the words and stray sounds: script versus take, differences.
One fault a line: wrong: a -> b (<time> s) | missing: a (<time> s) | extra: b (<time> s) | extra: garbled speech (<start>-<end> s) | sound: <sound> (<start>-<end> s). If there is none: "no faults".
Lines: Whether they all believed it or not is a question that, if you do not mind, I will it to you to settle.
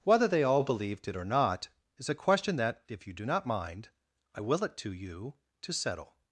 no faults